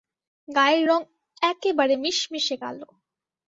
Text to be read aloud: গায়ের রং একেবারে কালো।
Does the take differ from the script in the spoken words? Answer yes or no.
yes